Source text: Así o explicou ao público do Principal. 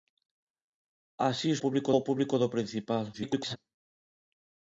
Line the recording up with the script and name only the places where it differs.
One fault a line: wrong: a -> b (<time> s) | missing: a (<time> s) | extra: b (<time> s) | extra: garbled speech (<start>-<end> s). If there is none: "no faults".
wrong: explicou -> público (1.6 s)
extra: garbled speech (3.1-3.6 s)